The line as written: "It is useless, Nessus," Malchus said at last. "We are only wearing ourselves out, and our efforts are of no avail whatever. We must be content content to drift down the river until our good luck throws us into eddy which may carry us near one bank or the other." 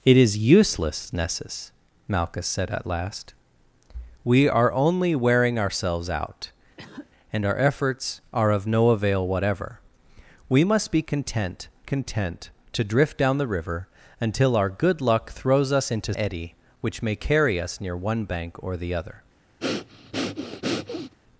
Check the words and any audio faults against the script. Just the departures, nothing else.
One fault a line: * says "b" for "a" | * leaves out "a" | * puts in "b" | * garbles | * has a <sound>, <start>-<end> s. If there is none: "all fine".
* has a cough, 6.8-7.1 s
* has a breath, 19.6-21.1 s